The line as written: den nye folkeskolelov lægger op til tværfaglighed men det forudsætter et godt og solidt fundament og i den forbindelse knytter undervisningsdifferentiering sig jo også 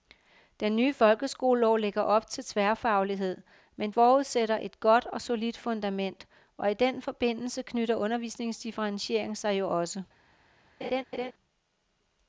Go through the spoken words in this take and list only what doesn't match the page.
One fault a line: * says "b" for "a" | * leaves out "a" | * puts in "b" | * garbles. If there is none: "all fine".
* leaves out "det"